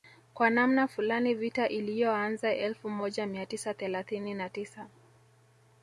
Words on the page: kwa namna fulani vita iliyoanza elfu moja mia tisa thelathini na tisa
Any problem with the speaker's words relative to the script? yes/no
no